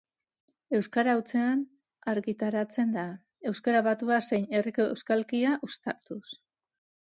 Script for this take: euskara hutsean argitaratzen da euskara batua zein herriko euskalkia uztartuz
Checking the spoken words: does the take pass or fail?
pass